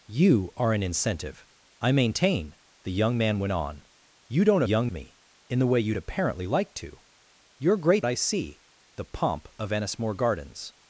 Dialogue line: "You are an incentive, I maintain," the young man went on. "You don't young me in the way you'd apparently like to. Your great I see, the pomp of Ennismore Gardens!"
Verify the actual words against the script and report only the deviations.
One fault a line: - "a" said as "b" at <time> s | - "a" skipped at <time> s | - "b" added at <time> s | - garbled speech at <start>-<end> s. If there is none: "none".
none